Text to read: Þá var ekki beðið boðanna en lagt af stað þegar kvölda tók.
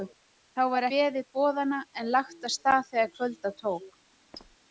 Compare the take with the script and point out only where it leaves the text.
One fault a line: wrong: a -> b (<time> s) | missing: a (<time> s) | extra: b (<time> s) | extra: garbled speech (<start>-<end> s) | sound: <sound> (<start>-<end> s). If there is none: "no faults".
missing: ekki (0.9 s)
sound: squeak (4.3-4.6 s)